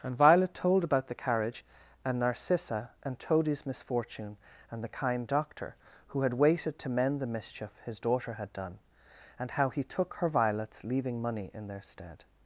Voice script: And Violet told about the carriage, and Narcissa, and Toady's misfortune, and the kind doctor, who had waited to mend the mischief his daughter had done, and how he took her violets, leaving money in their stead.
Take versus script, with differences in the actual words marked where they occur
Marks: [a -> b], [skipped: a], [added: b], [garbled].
And Violet told about the carriage, and Narcissa, and Toady's misfortune, and the kind doctor, who had waited to mend the mischief his daughter had done, and how he took her violets, leaving money in their stead.